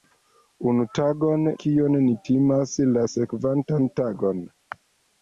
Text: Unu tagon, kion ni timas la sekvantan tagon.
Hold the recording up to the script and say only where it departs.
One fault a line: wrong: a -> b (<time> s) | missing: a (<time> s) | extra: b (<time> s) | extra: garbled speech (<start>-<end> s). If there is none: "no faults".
no faults